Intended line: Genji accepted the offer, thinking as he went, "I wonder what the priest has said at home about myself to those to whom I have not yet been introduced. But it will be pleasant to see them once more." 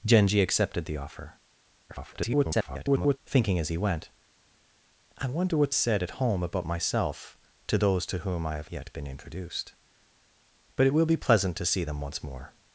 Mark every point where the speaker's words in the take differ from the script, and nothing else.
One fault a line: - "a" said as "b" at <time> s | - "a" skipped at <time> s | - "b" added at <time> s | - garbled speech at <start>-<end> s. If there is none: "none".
- garbled speech at 1.9-3.2 s
- "the priest has" skipped at 5.7 s
- "not" skipped at 8.7 s